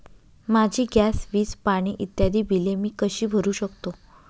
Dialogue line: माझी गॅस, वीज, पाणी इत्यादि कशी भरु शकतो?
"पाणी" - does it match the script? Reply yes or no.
yes